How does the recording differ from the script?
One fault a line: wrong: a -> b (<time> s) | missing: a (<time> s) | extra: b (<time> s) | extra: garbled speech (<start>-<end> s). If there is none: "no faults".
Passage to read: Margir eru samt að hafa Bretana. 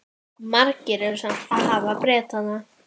no faults